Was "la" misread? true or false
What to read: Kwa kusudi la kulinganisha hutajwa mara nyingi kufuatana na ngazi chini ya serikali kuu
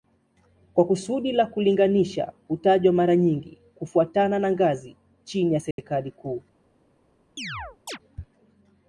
false